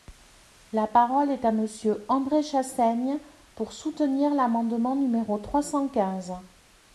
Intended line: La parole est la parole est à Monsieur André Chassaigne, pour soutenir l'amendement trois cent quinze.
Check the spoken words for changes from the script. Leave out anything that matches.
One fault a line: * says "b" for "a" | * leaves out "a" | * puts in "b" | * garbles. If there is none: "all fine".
* leaves out "la parole est"
* puts in "numéro"